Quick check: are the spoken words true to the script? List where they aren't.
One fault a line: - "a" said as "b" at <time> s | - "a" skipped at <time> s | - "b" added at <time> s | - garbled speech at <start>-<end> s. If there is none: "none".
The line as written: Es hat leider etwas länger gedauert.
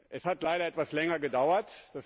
none